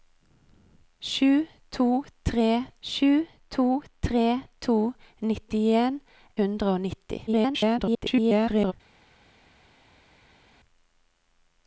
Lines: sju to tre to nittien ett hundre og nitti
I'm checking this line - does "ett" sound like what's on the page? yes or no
no